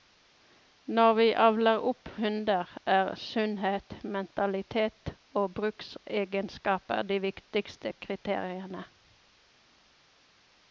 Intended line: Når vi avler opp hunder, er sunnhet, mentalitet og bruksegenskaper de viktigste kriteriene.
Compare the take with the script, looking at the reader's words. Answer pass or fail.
pass